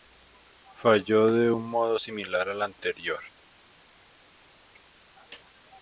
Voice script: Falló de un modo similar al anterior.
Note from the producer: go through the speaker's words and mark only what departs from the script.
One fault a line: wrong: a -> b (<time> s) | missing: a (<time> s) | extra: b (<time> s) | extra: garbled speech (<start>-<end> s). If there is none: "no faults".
no faults